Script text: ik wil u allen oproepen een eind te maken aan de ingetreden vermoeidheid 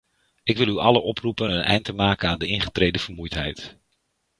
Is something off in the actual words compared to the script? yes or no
no